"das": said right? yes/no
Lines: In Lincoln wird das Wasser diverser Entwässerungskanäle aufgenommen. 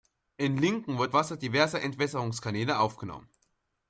no